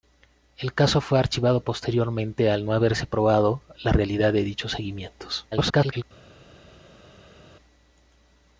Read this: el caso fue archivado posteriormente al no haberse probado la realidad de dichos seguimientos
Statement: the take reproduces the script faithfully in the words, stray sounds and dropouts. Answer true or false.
false